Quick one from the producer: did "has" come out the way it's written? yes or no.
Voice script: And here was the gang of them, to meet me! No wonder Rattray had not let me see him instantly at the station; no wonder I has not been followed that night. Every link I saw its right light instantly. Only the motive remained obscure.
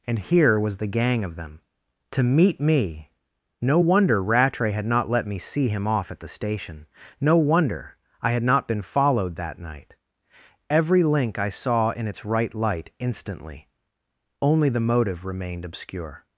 no